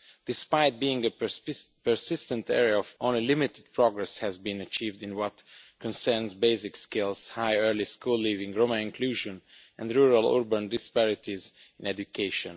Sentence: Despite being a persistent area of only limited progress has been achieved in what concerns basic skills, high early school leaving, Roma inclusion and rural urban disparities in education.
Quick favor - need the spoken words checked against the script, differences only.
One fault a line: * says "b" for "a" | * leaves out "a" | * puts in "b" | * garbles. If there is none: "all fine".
all fine